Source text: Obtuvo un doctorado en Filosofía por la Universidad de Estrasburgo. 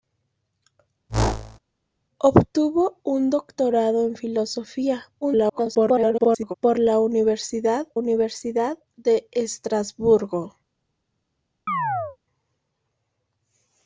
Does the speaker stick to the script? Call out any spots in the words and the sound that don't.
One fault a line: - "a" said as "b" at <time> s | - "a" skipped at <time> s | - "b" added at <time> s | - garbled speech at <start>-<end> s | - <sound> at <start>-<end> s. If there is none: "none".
- whoosh at 1.1-1.6 s
- garbled speech at 5.2-6.5 s
- "Universidad" added at 7.9 s
- chirp at 11.7-12.2 s